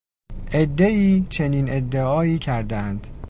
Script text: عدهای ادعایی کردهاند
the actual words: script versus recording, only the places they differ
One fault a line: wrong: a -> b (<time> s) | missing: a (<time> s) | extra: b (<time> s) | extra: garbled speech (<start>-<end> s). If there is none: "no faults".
extra: چنین (1.3 s)